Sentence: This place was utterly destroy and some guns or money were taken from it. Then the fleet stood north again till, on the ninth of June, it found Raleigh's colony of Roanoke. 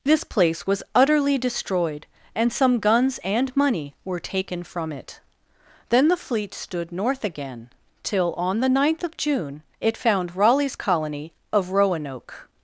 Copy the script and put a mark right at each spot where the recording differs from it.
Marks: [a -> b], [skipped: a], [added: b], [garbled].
This place was utterly [destroy -> destroyed] and some guns [or -> and] money were taken from it. Then the fleet stood north again till, on the ninth of June, it found Raleigh's colony of Roanoke.